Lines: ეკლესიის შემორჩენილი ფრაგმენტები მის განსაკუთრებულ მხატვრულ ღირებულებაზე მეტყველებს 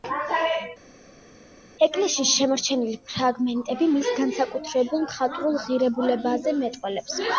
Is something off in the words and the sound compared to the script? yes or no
no